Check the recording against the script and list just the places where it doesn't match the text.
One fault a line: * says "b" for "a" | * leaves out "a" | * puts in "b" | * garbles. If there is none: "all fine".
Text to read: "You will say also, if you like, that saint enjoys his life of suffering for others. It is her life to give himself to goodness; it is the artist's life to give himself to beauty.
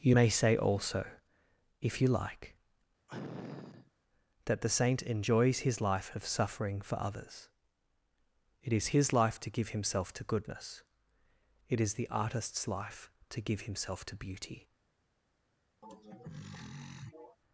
* says "may" for "will"
* puts in "the"
* says "his" for "her"